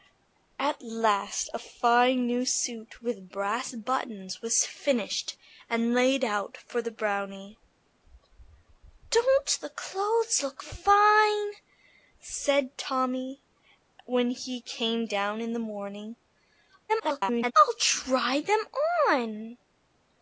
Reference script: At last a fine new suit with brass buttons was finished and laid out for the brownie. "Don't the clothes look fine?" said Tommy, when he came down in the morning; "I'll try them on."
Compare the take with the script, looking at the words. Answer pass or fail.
fail